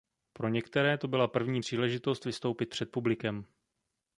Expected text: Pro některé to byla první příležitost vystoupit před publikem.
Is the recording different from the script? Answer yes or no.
no